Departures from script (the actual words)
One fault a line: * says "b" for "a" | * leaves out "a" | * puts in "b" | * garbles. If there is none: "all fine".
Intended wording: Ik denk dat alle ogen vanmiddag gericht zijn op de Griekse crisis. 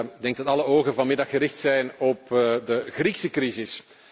all fine